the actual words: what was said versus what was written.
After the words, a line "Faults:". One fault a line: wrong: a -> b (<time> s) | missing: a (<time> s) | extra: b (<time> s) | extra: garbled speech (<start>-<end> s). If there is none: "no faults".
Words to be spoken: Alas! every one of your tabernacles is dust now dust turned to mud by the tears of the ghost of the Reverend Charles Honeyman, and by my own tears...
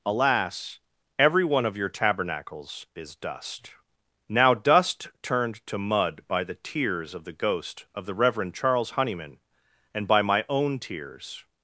Alas! every one of your tabernacles is dust now dust turned to mud by the tears of the ghost of the Reverend Charles Honeyman, and by my own tears...
Faults:
no faults